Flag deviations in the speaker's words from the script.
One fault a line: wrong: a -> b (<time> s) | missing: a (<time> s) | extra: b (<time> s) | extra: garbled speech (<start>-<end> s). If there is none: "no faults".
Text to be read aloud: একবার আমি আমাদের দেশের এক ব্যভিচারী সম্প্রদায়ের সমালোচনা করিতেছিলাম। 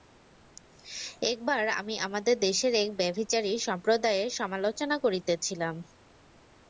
no faults